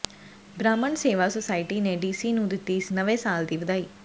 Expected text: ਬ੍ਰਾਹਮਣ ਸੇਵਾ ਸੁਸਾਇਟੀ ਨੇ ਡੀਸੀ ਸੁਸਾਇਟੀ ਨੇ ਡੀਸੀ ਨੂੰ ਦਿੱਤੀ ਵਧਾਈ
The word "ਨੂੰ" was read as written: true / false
false